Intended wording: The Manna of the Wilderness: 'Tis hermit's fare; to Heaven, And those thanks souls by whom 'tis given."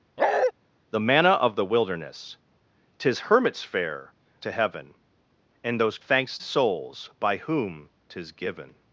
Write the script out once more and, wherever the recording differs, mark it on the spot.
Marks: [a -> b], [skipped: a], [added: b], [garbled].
The Manna of the Wilderness: 'Tis hermit's fare; to Heaven, And those thanks souls by whom 'tis given."